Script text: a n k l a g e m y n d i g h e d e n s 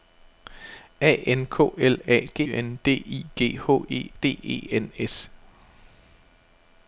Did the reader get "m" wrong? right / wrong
wrong